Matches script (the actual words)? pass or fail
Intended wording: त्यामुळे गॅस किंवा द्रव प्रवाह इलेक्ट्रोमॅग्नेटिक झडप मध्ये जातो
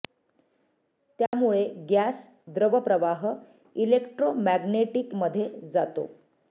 fail